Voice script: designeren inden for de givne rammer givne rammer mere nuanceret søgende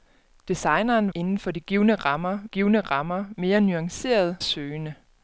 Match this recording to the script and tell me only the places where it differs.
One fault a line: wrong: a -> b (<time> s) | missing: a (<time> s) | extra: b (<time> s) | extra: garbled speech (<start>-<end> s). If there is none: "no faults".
no faults